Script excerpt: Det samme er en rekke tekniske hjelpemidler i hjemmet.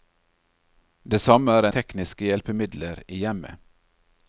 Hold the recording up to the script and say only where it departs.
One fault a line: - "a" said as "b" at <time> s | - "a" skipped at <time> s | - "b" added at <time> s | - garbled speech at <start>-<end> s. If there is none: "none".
- "en rekke" skipped at 1.7 s